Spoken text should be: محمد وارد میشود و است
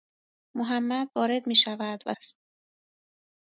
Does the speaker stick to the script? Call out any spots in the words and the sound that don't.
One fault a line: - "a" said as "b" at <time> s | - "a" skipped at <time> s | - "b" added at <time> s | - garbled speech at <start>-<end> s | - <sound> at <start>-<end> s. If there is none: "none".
none